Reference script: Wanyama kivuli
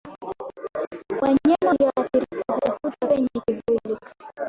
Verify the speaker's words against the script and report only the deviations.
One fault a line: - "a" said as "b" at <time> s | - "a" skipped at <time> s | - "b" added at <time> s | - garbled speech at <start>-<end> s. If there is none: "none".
- "walioathirika hutafuta penye" added at 1.7 s